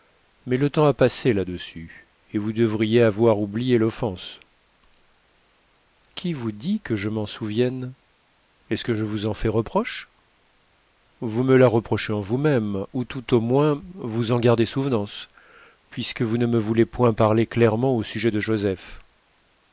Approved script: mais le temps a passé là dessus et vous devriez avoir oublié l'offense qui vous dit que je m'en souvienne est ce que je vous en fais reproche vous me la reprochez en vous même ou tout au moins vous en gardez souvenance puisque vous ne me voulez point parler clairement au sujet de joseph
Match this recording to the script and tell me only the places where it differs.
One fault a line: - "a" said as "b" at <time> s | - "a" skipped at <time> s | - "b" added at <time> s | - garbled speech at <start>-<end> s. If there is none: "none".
none